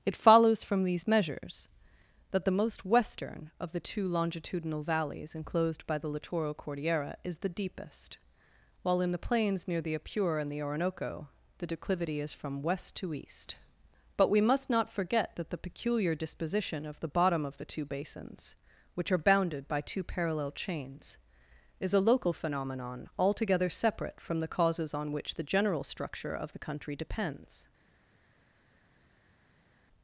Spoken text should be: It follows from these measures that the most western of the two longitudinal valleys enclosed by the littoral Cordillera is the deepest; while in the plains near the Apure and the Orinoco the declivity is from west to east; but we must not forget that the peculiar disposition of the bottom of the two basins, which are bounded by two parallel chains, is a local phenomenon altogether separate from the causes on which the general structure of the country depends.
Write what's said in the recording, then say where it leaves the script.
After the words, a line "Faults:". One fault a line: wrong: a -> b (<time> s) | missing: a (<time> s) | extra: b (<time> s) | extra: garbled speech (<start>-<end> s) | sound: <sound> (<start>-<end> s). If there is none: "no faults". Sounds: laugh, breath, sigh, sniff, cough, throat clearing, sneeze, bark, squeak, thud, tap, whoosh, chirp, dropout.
It follows from these measures that the most western of the two longitudinal valleys enclosed by the littoral Cordillera is the deepest; while in the plains near the Apure and the Orinoco the declivity is from west to east; but we must not forget that the peculiar disposition of the bottom of the two basins, which are bounded by two parallel chains, is a local phenomenon altogether separate from the causes on which the general structure of the country depends.
Faults:
no faults